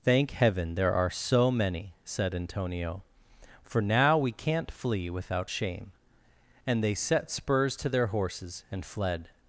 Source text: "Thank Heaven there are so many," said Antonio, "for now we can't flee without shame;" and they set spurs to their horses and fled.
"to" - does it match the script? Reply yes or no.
yes